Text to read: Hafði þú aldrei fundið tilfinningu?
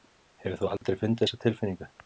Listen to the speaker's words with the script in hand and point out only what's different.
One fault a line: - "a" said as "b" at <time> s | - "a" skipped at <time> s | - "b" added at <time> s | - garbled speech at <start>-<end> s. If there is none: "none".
- "Hafði" said as "Hefur" at 0.5 s
- "þessa" added at 1.2 s